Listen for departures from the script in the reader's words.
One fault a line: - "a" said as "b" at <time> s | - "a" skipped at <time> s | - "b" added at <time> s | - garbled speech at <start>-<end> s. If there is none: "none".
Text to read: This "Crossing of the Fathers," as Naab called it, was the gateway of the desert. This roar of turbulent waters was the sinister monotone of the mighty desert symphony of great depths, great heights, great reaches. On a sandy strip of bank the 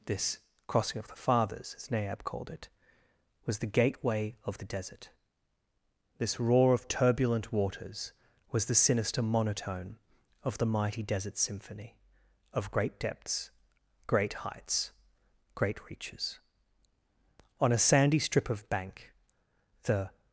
none